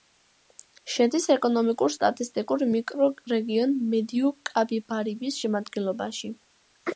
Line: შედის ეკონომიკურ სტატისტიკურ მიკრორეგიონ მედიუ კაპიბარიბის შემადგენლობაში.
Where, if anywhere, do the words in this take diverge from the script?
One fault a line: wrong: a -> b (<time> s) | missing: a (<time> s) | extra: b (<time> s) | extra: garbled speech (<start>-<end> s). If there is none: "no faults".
no faults